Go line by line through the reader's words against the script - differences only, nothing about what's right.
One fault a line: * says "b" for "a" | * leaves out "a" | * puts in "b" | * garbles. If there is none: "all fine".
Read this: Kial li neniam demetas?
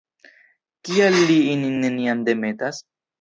* puts in "ilin"